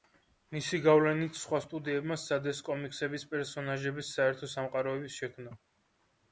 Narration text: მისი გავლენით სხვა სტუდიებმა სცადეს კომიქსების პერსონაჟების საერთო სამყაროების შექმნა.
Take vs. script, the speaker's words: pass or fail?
pass